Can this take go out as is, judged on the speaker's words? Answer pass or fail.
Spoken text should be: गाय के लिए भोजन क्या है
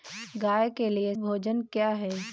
pass